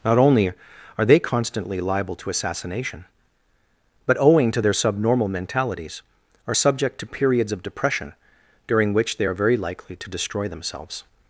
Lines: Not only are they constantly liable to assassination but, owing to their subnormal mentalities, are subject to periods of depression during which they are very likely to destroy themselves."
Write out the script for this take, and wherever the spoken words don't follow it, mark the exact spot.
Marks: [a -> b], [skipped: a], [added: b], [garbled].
Not only are they constantly liable to assassination but, owing to their subnormal mentalities, are subject to periods of depression during which they are very likely to destroy themselves."